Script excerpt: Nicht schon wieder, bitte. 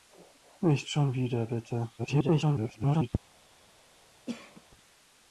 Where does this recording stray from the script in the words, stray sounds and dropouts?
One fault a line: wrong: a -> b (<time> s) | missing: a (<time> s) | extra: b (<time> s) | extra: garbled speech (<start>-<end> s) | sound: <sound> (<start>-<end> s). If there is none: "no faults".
extra: garbled speech (2.0-3.1 s)
sound: cough (4.3-4.6 s)